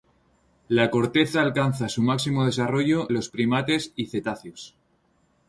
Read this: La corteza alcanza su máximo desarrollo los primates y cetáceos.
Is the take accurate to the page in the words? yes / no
yes